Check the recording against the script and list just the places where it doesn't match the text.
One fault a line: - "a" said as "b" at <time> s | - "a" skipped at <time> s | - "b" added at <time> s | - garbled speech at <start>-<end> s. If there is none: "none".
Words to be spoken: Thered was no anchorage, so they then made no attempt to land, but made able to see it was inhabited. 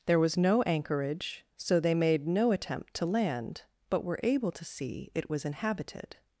- "Thered" said as "There" at 0.1 s
- "then" skipped at 1.9 s
- "made" said as "were" at 4.0 s